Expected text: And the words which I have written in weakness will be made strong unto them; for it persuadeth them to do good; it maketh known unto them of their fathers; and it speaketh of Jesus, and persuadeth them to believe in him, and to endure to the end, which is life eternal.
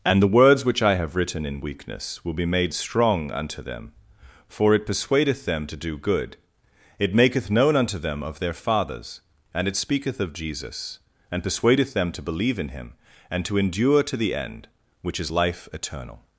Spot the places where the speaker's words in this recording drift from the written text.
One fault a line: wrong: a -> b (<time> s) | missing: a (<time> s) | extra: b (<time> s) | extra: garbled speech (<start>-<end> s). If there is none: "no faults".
no faults